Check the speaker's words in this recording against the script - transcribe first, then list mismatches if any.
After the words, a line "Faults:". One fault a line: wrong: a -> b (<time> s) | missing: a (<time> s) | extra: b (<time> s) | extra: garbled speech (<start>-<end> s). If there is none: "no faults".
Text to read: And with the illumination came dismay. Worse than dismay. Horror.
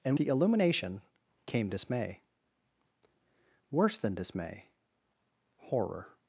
And the illumination came dismay. Worse than dismay. Horror.
Faults:
missing: with (0.2 s)